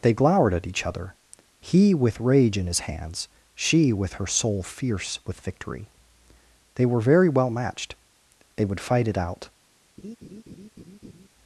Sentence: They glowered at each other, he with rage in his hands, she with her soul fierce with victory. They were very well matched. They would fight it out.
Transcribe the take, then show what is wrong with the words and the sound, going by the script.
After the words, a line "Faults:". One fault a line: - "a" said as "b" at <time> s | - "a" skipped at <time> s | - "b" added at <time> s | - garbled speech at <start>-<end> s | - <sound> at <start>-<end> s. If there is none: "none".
They glowered at each other, he with rage in his hands, she with her soul fierce with victory. They were very well matched. They would fight it out.
Faults:
- laugh at 10.0-11.3 s